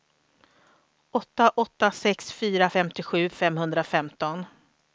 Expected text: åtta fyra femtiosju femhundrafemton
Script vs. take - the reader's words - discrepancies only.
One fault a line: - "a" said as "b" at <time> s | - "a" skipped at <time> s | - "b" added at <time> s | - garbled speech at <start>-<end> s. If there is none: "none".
- "åtta sex" added at 1.6 s